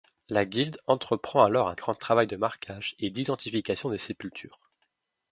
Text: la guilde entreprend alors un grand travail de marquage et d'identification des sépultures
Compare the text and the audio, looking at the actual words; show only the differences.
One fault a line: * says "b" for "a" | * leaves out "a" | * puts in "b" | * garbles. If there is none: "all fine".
all fine